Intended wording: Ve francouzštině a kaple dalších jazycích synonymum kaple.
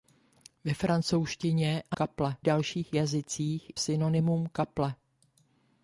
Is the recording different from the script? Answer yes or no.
no